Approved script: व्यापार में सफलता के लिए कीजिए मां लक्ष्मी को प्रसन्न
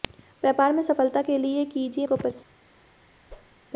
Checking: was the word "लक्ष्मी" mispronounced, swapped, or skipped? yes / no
yes